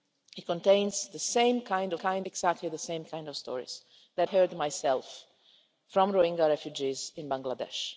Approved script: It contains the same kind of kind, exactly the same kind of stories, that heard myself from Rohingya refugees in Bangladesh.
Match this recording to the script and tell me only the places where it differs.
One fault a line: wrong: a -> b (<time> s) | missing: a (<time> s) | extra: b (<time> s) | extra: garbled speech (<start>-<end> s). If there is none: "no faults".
no faults